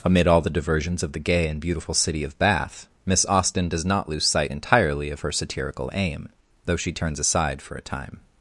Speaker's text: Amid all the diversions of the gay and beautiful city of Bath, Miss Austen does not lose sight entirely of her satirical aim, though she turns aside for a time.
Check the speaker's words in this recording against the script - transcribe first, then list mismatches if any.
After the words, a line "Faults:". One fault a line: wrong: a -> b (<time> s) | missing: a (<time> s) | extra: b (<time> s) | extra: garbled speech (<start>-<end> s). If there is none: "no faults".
Amid all the diversions of the gay and beautiful city of Bath, Miss Austen does not lose sight entirely of her satirical aim, though she turns aside for a time.
Faults:
no faults